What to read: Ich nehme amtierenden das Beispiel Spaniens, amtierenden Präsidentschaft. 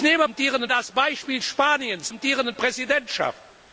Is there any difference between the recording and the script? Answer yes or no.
no